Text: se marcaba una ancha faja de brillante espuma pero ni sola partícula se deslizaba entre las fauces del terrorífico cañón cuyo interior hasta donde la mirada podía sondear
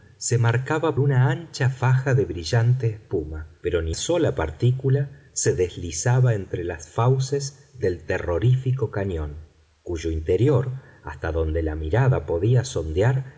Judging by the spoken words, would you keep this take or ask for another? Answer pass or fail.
pass